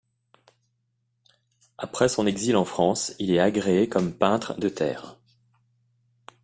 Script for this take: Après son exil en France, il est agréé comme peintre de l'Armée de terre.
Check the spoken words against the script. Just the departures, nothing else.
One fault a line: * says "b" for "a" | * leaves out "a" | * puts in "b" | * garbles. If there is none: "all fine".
* leaves out "l'Armée"